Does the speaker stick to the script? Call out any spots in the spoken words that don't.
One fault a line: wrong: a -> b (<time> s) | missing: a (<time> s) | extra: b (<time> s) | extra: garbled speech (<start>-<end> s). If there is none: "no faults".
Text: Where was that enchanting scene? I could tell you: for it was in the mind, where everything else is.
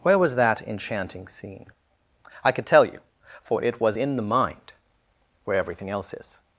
no faults